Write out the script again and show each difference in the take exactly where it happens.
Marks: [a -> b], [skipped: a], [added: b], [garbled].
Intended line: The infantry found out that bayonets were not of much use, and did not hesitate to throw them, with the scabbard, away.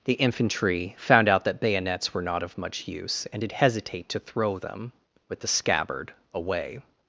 The infantry found out that bayonets were not of much use, and did [skipped: not] hesitate to throw them, with the scabbard, away.